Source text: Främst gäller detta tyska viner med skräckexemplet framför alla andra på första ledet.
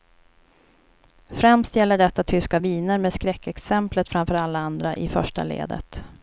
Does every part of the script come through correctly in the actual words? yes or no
no